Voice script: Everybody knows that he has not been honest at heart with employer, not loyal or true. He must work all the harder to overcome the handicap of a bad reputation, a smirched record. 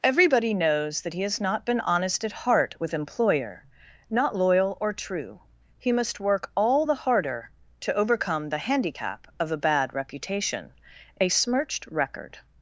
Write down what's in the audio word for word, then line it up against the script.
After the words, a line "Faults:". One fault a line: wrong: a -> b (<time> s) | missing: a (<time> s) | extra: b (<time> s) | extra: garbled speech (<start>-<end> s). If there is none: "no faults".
Everybody knows that he has not been honest at heart with employer, not loyal or true. He must work all the harder to overcome the handicap of a bad reputation, a smirched record.
Faults:
no faults